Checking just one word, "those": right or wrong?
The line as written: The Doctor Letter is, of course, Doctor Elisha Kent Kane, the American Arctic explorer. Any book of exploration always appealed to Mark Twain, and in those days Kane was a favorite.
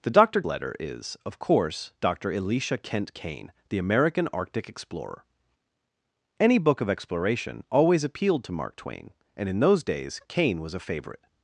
right